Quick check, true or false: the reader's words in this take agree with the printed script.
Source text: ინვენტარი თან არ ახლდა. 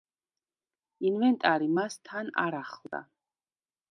false